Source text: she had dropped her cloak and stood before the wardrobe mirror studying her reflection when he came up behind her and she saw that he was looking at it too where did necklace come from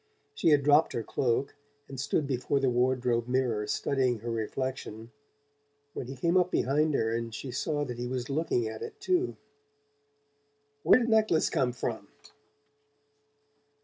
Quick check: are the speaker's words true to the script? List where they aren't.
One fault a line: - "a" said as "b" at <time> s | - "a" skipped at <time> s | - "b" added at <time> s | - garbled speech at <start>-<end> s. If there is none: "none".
none